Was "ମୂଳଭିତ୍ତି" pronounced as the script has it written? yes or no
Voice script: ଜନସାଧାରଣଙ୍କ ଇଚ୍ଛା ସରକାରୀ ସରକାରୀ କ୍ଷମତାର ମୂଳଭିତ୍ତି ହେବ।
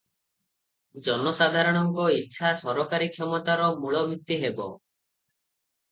yes